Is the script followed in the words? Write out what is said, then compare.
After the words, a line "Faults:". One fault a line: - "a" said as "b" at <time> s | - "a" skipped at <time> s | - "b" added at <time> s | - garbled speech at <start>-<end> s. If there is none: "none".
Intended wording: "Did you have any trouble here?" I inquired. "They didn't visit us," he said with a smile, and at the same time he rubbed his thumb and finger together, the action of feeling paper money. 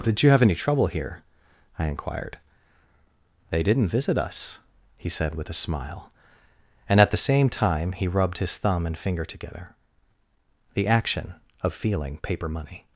"Did you have any trouble here?" I inquired. "They didn't visit us," he said with a smile, and at the same time he rubbed his thumb and finger together, the action of feeling paper money.
Faults:
none